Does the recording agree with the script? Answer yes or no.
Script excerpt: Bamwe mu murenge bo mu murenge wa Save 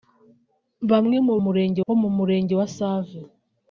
yes